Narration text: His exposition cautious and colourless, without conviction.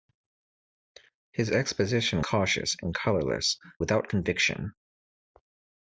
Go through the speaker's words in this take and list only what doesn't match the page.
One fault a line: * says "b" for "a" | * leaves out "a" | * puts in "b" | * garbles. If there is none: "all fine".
all fine